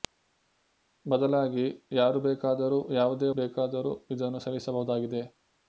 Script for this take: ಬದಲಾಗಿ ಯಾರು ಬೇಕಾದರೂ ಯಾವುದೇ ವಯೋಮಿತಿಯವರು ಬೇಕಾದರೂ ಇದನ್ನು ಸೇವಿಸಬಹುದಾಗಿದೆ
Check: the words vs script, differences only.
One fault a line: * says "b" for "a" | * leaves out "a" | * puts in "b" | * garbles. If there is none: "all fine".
* leaves out "ವಯೋಮಿತಿಯವರು"